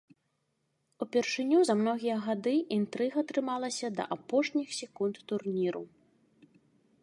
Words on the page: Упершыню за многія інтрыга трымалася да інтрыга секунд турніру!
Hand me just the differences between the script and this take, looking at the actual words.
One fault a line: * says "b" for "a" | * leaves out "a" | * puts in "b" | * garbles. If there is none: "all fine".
* puts in "гады"
* says "апошніх" for "інтрыга"